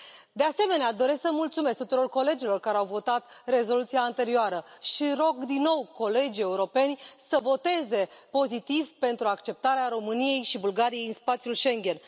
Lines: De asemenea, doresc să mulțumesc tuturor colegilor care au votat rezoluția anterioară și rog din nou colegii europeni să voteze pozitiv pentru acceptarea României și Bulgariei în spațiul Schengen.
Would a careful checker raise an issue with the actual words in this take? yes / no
no